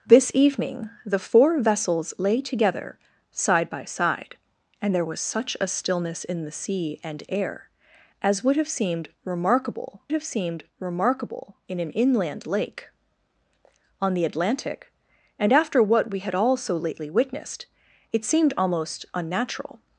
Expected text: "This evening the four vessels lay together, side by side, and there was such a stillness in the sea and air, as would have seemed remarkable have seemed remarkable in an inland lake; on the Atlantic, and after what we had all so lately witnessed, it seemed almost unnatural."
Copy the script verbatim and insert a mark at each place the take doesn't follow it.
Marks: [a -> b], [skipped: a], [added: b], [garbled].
"This evening the four vessels lay together, side by side, and there was such a stillness in the sea and air, as would have seemed remarkable have seemed remarkable in an inland lake; on the Atlantic, and after what we had all so lately witnessed, it seemed almost unnatural."